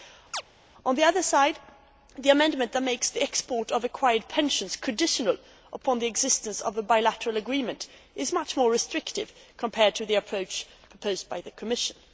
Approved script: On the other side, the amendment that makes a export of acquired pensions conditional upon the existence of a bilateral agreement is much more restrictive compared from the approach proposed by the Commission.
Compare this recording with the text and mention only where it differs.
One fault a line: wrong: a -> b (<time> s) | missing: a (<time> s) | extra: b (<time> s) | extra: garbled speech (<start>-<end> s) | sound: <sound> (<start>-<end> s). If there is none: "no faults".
sound: chirp (0.3-0.4 s)
wrong: a -> the (3.1 s)
wrong: from -> to (9.9 s)